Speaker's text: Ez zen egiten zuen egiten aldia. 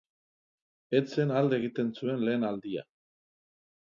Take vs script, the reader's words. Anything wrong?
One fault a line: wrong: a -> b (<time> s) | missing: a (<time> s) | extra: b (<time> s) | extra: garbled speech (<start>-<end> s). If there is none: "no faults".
extra: alde (1.4 s)
wrong: egiten -> lehen (2.3 s)